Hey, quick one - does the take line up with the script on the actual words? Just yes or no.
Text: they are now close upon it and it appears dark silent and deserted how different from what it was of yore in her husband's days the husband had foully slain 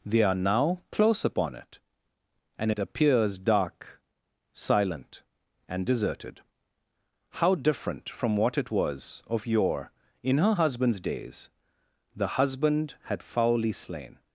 yes